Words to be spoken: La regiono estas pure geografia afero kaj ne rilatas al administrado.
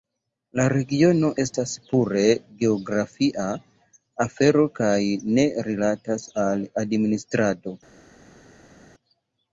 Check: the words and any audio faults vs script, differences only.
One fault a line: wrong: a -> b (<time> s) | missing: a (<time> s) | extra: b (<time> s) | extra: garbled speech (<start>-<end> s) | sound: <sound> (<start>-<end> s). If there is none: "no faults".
no faults